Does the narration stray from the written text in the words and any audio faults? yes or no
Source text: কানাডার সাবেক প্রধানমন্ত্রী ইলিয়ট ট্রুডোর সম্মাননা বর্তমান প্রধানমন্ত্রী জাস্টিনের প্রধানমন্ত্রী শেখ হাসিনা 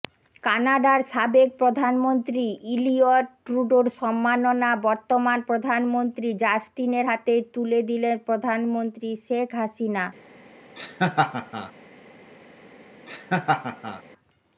yes